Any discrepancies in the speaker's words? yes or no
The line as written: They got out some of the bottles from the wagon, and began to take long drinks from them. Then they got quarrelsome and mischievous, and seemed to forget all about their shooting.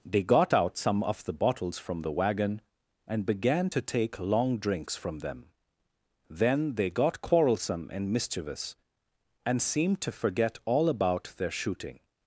no